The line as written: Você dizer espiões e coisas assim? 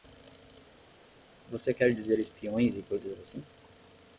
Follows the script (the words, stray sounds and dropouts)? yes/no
no